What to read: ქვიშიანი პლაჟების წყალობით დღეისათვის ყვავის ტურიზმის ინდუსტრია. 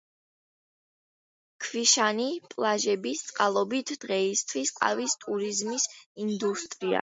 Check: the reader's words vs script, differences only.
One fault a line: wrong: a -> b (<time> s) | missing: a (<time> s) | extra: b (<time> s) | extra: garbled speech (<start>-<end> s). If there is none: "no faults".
no faults